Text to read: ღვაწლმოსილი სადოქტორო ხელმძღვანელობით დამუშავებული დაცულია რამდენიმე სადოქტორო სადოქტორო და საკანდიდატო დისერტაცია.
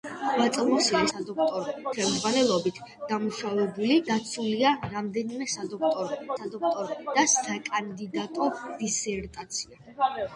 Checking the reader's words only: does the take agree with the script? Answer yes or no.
yes